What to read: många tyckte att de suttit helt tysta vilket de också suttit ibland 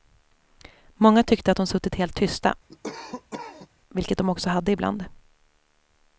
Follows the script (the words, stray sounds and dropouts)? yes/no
no